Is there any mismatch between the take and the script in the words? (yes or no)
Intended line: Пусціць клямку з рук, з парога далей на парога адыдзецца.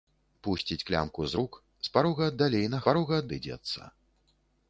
no